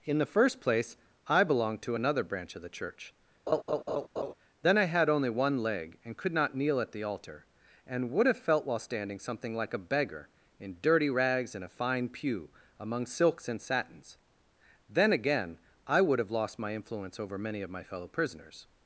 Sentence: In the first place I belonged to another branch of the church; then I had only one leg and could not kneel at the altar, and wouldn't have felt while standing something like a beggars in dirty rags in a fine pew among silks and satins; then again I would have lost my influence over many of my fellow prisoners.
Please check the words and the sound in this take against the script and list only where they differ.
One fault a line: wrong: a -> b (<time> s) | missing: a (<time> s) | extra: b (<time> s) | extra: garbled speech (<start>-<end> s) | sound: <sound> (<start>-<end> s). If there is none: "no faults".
sound: laugh (3.5-4.3 s)
wrong: wouldn't -> would (8.1 s)
wrong: beggars -> beggar (9.8 s)